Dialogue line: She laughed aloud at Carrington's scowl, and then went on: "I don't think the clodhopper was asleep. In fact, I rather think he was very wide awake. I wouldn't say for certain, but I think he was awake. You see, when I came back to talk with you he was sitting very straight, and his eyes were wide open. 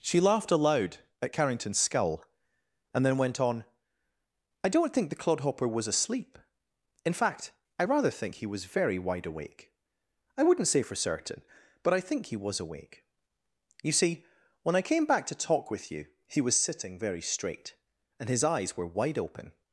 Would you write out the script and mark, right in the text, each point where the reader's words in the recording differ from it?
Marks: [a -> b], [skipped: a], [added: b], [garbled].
She laughed aloud at Carrington's [scowl, -> skull] and then went on: "I don't think the clodhopper was asleep. In fact, I rather think he was very wide awake. I wouldn't say for certain, but I think he was awake. You see, when I came back to talk with you he was sitting very straight, and his eyes were wide open.